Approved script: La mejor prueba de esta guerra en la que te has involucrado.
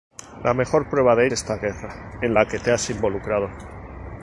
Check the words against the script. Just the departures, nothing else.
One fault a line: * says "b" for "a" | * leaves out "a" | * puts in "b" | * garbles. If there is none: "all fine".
all fine